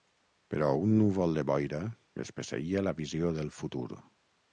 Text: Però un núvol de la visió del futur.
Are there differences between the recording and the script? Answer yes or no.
yes